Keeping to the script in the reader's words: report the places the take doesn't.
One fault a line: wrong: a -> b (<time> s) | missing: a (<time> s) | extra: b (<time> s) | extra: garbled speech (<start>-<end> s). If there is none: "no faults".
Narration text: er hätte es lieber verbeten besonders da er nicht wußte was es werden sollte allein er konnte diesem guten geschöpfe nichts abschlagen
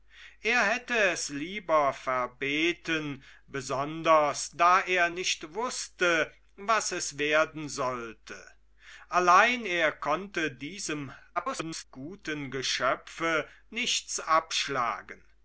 extra: garbled speech (11.4-11.8 s)